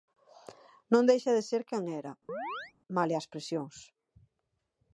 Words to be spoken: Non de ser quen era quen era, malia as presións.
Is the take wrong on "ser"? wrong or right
right